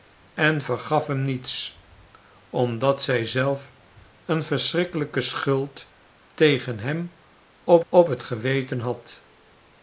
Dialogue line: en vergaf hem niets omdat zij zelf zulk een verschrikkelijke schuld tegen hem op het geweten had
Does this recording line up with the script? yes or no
no